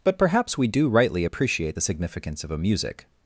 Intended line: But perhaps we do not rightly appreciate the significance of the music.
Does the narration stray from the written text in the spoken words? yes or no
yes